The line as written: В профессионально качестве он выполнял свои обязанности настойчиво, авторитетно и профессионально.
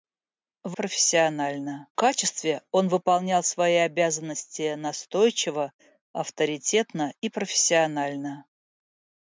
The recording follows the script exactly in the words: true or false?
true